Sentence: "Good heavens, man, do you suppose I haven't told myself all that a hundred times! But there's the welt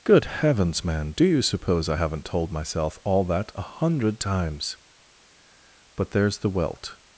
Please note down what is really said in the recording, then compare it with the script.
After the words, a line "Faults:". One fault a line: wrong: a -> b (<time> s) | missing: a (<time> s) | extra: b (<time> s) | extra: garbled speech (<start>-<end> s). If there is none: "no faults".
"Good heavens, man, do you suppose I haven't told myself all that a hundred times! But there's the welt
Faults:
no faults